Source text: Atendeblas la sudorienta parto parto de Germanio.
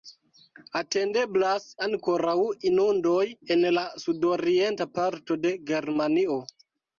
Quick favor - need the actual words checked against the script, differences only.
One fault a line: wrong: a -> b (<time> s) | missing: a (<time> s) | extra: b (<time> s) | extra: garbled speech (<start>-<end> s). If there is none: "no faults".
extra: ankoraŭ inundoj en (1.9 s)
missing: parto (5.4 s)